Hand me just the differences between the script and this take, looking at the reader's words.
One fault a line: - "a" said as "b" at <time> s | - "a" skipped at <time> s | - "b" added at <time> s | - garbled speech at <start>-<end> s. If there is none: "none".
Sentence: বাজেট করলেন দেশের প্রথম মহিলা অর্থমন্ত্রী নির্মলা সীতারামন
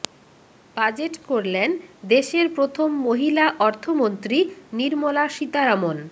none